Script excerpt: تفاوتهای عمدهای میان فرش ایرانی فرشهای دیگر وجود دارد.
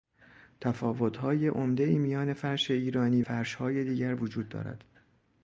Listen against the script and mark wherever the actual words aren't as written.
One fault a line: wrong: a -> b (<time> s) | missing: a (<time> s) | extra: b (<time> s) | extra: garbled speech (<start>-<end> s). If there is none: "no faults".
no faults